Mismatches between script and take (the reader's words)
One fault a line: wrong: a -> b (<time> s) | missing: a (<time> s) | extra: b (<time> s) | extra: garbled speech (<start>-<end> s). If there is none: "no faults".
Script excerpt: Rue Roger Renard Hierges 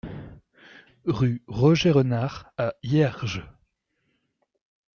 extra: à (2.6 s)